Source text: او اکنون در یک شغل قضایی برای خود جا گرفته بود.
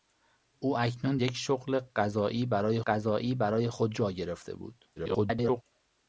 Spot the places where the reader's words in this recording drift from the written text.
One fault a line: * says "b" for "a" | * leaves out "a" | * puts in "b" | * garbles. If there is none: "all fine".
* leaves out "در"
* puts in "قضایی برای"
* garbles